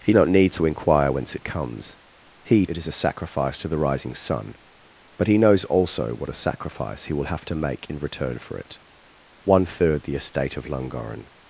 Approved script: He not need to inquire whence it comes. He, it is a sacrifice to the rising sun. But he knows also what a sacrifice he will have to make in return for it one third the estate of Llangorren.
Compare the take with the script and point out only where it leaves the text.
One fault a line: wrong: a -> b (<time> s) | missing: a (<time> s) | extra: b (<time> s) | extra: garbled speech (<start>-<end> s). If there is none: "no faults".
no faults